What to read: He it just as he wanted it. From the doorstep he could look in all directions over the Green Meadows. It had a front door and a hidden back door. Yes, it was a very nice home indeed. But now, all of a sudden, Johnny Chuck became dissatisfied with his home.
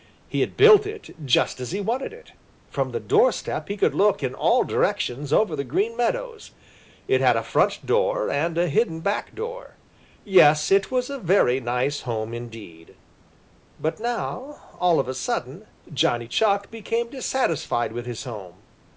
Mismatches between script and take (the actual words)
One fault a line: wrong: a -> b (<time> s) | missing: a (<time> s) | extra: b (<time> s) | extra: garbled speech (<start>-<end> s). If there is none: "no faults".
extra: had built (0.4 s)